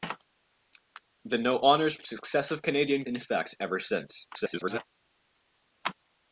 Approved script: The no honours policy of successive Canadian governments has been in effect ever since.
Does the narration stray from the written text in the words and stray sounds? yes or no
yes